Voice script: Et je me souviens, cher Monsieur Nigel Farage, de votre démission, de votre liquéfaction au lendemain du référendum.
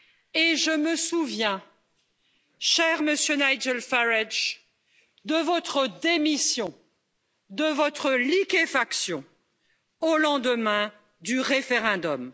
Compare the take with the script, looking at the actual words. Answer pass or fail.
pass